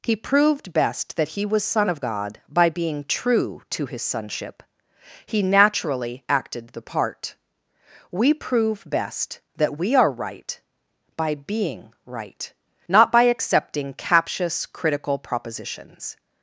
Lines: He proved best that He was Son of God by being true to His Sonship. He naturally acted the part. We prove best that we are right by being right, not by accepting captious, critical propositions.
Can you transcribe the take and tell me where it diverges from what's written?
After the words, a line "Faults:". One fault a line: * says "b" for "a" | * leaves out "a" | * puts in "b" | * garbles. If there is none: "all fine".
He proved best that He was Son of God by being true to His Sonship. He naturally acted the part. We prove best that we are right by being right, not by accepting captious, critical propositions.
Faults:
all fine